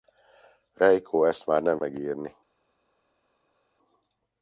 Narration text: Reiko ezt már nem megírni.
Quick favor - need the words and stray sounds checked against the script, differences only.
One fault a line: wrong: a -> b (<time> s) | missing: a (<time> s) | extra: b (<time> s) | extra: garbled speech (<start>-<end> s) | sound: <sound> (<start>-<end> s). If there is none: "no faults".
no faults